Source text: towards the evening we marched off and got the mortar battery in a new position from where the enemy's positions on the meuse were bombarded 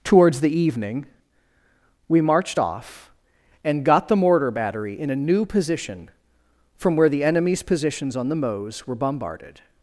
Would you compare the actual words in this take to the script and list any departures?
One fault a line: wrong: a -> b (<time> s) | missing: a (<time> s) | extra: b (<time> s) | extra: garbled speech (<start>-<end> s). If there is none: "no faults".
no faults